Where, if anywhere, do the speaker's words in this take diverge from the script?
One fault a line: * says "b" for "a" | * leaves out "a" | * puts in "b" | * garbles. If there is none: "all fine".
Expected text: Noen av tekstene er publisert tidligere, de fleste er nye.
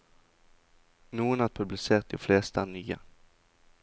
* leaves out "tekstene"
* leaves out "tidligere"